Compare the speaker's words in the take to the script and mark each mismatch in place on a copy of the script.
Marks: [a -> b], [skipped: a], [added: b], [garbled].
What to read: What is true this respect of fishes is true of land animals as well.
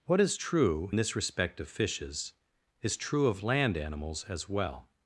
What is true this respect of fishes is true of land animals as well.